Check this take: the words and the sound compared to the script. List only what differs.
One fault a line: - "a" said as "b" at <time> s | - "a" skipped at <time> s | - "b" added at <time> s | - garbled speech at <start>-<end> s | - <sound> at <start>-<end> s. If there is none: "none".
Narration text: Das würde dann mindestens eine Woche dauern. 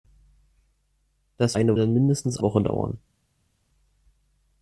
- "würde" said as "eine" at 1.5 s
- "eine" skipped at 2.4 s